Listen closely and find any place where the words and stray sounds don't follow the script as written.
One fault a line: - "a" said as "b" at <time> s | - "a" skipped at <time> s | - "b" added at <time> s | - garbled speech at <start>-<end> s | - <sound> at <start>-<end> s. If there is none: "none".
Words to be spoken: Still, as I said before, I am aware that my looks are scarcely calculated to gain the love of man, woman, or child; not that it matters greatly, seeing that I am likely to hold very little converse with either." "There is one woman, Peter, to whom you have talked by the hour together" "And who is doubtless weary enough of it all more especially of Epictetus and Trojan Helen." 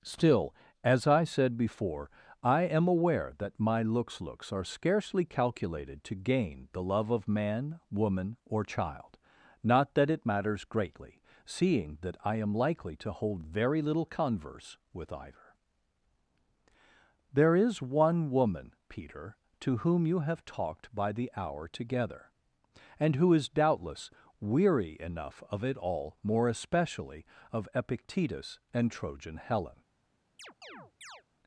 - "looks" added at 4.2 s
- chirp at 30.4-31.2 s